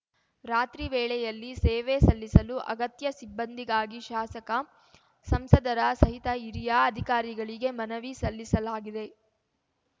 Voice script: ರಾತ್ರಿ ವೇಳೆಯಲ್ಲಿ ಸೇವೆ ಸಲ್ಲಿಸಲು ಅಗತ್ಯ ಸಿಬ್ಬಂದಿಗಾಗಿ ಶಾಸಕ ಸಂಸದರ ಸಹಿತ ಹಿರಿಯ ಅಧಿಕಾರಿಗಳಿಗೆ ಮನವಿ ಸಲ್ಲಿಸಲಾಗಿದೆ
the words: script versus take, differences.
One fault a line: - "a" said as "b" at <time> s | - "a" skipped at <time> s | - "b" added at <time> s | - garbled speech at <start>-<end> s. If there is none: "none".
none